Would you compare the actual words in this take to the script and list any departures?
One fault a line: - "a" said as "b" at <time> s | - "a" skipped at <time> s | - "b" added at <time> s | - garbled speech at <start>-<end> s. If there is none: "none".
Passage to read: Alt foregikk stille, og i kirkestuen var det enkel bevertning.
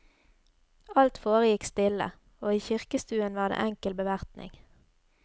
none